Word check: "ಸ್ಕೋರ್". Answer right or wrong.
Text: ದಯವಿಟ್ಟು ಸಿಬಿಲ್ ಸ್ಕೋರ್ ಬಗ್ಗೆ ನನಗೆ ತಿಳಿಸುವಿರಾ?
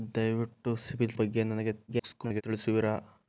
wrong